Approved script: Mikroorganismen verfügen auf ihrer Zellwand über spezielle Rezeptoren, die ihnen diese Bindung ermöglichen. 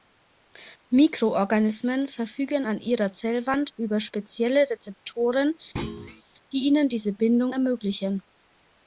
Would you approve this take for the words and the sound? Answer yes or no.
no